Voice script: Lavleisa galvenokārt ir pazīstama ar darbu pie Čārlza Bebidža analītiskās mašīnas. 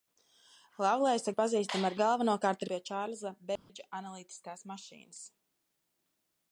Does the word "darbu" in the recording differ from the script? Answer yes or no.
yes